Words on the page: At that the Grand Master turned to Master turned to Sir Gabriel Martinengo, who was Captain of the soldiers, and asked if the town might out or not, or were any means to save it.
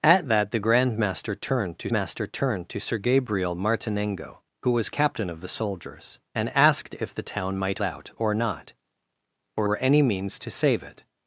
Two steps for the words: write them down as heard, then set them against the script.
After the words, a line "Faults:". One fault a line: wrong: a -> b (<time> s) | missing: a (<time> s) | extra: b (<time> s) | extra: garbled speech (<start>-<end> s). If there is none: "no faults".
At that the Grand Master turned to Master turned to Sir Gabriel Martinengo, who was Captain of the soldiers, and asked if the town might out or not, or were any means to save it.
Faults:
no faults